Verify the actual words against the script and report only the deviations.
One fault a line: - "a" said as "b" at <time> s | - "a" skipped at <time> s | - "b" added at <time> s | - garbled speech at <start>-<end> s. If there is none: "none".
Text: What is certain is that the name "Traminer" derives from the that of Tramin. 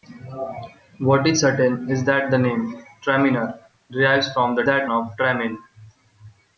none